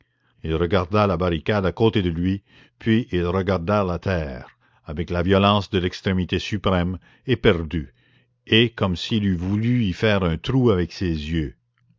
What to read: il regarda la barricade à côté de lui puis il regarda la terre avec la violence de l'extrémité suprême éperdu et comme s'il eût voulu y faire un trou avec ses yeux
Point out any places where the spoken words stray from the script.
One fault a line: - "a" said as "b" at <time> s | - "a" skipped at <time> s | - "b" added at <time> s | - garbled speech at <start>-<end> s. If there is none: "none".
none